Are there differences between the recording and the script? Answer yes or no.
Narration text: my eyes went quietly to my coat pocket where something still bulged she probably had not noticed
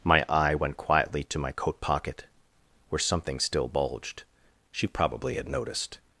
yes